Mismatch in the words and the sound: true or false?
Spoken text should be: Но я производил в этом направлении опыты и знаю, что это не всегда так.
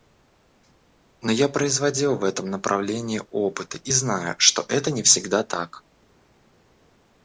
false